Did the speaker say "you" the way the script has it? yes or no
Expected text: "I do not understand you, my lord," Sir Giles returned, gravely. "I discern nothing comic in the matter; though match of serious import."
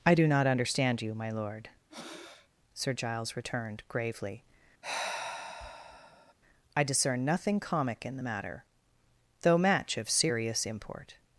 yes